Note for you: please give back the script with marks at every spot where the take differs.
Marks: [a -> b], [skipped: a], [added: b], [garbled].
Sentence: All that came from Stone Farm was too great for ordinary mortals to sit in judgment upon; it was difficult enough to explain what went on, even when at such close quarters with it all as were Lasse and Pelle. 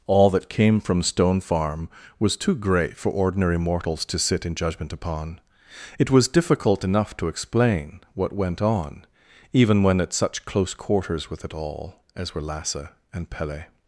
All that came from Stone Farm was too great for ordinary mortals to sit in judgment upon; it was difficult enough to explain what went on, even when at such close quarters with it all as were Lasse and Pelle.